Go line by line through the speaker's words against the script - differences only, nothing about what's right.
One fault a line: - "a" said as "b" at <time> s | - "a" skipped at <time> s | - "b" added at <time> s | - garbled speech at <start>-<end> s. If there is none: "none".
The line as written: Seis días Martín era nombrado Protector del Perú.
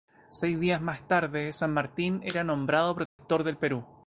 - "más tarde San" added at 0.8 s